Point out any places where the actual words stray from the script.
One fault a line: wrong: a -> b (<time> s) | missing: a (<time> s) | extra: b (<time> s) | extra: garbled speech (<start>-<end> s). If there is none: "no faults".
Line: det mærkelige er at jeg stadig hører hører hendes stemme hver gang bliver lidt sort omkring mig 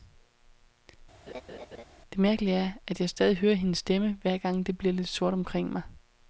missing: hører (3.5 s)
extra: det (4.7 s)